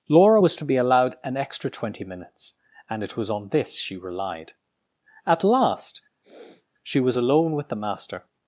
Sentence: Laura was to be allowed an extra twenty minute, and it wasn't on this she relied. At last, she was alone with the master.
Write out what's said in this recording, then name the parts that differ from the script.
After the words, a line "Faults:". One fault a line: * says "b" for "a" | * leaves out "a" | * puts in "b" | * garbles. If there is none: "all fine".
Laura was to be allowed an extra twenty minutes, and it was on this she relied. At last, she was alone with the master.
Faults:
* says "minutes" for "minute"
* says "was" for "wasn't"